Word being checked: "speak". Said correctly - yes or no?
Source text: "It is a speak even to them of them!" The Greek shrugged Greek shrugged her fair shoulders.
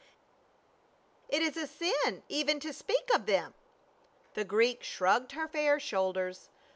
no